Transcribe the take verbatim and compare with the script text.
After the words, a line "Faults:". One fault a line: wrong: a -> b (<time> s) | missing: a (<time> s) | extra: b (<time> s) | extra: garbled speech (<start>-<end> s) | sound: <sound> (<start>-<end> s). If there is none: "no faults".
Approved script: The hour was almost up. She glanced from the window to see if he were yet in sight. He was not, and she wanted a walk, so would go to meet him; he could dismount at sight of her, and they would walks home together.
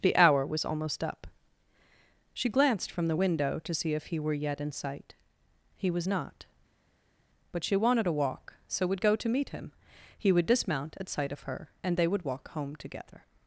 The hour was almost up. She glanced from the window to see if he were yet in sight. He was not, but she wanted a walk, so would go to meet him; he would dismount at sight of her, and they would walk home together.
Faults:
wrong: and -> but (7.5 s)
wrong: could -> would (10.3 s)
wrong: walks -> walk (12.2 s)